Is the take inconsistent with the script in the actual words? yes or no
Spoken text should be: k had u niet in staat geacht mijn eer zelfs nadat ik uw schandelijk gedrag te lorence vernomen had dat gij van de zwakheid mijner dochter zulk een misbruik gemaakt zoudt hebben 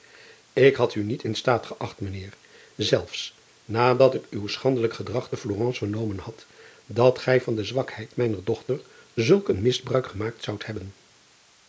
no